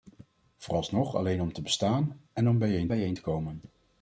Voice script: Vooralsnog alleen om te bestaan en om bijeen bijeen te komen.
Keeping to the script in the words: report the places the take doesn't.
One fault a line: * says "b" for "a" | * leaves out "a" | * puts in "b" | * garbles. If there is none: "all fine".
all fine